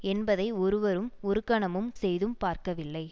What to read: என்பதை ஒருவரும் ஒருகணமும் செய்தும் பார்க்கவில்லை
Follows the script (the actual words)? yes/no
yes